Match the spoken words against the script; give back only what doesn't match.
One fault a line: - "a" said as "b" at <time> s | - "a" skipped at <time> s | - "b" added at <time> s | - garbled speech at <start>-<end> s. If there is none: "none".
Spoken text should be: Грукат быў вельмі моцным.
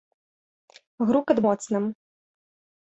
- "быў вельмі" skipped at 1.4 s